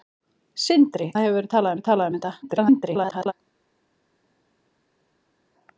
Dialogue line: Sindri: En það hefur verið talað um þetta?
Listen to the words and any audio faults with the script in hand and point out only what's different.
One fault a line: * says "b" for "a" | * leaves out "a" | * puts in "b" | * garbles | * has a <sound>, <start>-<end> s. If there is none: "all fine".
* leaves out "En"
* puts in "verið talað"
* garbles